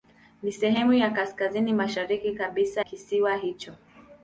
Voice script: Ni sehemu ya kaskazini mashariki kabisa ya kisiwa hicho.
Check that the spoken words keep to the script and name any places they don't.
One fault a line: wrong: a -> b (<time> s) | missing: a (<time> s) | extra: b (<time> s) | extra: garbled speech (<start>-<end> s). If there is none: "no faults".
missing: ya (2.8 s)